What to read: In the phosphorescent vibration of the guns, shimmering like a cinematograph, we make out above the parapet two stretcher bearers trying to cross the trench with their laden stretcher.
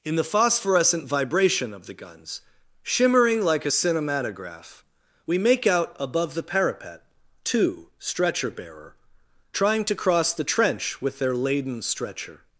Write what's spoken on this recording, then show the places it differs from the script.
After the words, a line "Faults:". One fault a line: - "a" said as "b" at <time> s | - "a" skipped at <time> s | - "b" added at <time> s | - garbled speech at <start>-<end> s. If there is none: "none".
In the phosphorescent vibration of the guns, shimmering like a cinematograph, we make out above the parapet two stretcher bearer trying to cross the trench with their laden stretcher.
Faults:
- "bearers" said as "bearer" at 8.5 s